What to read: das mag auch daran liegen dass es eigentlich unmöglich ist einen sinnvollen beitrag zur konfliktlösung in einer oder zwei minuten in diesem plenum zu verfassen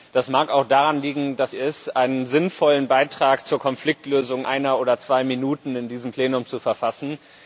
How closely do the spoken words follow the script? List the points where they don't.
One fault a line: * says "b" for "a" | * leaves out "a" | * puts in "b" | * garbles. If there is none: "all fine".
* leaves out "es eigentlich unmöglich"
* leaves out "in"